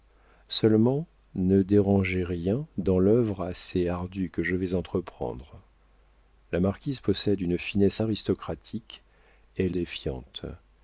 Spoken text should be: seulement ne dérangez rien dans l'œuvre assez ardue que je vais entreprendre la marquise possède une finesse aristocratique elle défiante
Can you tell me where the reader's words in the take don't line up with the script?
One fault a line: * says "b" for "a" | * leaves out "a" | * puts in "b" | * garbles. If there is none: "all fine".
all fine